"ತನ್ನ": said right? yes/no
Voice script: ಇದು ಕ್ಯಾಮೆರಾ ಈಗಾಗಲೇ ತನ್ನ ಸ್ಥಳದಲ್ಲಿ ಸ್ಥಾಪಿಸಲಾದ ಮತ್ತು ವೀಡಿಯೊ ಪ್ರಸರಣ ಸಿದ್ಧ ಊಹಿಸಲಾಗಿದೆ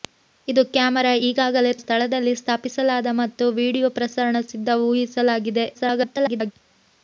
no